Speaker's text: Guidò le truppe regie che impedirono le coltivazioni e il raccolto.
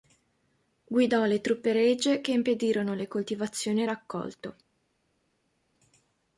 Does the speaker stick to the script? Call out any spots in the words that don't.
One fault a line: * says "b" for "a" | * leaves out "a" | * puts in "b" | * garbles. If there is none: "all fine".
all fine